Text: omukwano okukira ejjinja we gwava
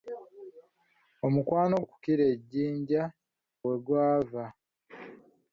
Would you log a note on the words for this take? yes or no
no